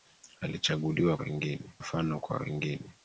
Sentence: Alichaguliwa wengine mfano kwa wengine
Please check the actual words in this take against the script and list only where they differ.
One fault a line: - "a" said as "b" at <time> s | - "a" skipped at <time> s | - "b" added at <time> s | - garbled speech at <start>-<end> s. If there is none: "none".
none